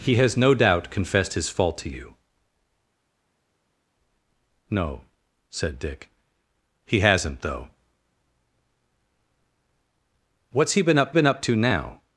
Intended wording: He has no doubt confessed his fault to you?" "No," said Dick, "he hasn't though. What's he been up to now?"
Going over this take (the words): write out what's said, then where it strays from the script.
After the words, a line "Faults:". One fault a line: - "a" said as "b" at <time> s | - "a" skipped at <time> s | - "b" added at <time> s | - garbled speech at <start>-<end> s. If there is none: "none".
He has no doubt confessed his fault to you?" "No," said Dick, "he hasn't though. What's he been up been up to now?"
Faults:
- "been up" added at 11.1 s